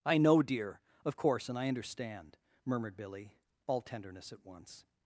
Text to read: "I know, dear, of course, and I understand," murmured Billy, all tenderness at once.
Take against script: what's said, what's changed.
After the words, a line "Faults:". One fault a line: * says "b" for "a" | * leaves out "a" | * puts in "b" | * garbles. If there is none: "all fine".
"I know, dear, of course, and I understand," murmured Billy, all tenderness at once.
Faults:
all fine